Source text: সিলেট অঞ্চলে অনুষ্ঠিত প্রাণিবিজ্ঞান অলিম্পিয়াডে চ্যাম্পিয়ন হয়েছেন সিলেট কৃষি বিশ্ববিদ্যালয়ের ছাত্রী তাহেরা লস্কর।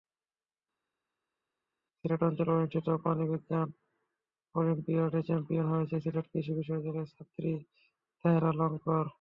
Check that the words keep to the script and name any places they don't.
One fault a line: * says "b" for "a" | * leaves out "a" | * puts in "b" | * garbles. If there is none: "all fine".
all fine